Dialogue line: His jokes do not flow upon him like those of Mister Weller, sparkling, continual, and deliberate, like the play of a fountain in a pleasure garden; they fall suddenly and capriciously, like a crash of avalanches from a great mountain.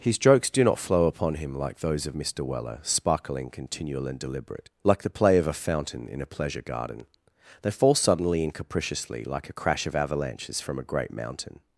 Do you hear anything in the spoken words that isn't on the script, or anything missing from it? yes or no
no